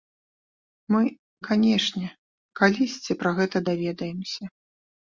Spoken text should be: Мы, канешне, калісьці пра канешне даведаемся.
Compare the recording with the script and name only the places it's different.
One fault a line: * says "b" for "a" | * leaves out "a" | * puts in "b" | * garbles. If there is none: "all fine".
* says "гэта" for "канешне"